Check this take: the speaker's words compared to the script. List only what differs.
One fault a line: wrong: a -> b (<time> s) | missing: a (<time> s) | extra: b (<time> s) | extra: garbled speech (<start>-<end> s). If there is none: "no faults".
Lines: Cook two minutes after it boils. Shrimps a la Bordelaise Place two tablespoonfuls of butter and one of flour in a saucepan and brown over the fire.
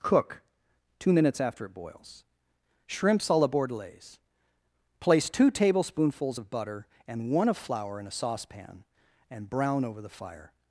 no faults